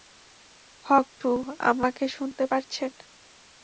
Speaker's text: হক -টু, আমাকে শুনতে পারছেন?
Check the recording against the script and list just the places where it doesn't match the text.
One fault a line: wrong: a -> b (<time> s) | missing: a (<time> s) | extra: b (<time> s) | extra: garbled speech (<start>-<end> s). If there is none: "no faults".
no faults